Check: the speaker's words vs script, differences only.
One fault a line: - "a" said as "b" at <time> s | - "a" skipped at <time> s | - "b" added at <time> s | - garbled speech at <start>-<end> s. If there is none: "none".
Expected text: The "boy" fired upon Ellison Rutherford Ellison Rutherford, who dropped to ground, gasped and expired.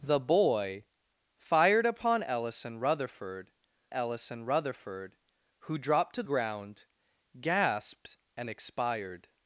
none